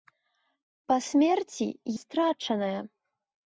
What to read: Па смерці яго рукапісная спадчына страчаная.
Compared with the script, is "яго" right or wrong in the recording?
wrong